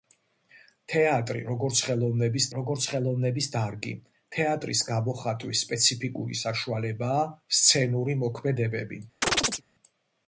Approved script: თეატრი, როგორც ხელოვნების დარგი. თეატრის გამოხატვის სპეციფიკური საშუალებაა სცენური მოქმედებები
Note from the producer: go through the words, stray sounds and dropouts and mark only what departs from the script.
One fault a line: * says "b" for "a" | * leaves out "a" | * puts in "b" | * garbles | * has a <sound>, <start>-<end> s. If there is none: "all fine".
* puts in "როგორც ხელოვნების"
* has a chirp, 9.2-9.6 s